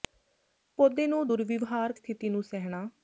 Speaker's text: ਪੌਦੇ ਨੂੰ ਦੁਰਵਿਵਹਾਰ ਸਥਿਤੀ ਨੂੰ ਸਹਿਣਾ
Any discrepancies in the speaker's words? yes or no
no